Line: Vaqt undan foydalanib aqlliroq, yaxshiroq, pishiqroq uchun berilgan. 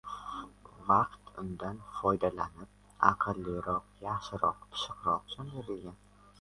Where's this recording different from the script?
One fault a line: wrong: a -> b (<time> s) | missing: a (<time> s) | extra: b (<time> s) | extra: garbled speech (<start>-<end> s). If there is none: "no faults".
no faults